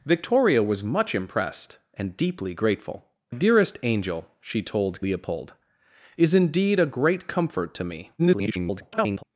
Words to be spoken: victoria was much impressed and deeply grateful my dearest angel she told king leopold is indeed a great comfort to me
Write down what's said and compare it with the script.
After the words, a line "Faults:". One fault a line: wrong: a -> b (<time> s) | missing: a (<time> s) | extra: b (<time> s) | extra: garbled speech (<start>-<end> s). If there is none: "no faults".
victoria was much impressed and deeply grateful dearest angel she told leopold is indeed a great comfort to me [garbled]
Faults:
missing: my (3.1 s)
missing: king (5.0 s)
extra: garbled speech (8.2-9.2 s)